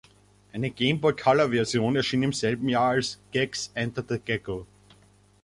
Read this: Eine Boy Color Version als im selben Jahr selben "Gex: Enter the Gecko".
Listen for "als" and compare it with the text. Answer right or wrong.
wrong